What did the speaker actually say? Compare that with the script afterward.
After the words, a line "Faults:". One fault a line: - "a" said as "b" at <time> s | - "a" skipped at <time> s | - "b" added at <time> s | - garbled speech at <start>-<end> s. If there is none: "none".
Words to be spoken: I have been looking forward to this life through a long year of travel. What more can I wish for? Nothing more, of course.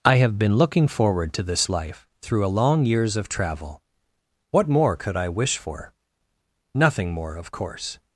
I have been looking forward to this life through a long years of travel. What more could I wish for? Nothing more, of course.
Faults:
- "year" said as "years" at 2.9 s
- "can" said as "could" at 5.0 s